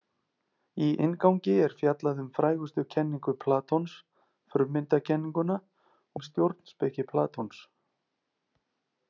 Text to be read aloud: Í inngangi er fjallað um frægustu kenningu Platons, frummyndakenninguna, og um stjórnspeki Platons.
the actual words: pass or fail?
fail